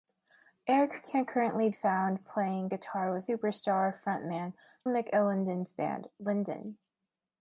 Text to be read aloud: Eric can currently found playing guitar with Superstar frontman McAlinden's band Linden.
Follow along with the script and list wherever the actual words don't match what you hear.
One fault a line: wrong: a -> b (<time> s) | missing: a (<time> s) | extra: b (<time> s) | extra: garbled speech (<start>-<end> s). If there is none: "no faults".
no faults